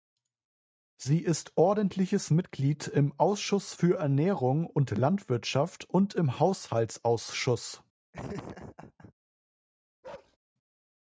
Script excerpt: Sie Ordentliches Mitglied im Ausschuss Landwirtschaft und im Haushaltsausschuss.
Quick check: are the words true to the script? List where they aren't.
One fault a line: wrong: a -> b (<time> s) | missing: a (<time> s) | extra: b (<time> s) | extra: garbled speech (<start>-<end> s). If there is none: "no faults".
extra: ist (1.2 s)
extra: für Ernährung und (3.7 s)